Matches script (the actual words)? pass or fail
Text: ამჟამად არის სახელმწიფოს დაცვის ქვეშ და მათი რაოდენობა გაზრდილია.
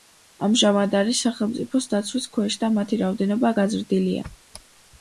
pass